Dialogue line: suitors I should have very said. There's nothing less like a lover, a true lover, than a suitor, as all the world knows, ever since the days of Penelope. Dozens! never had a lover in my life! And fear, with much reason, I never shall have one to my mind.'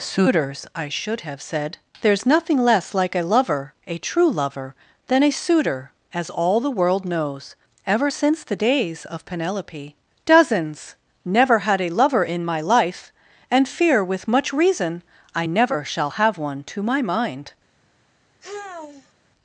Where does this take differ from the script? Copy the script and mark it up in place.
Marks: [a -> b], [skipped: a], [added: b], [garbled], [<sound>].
suitors I should have [skipped: very] said. There's nothing less like a lover, a true lover, than a suitor, as all the world knows, ever since the days of Penelope. Dozens! never had a lover in my life! And fear, with much reason, I never shall have one to my mind.' [sigh]